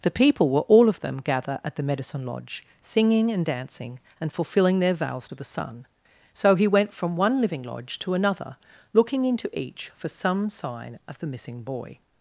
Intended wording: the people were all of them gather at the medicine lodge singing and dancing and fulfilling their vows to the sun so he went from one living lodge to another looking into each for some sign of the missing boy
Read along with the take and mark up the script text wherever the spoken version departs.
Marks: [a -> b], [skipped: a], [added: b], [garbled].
the people were all of them gather at the medicine lodge singing and dancing and fulfilling their vows to the sun so he went from one living lodge to another looking into each for some sign of the missing boy